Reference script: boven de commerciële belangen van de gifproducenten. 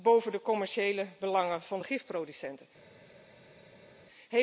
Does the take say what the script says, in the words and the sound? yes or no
yes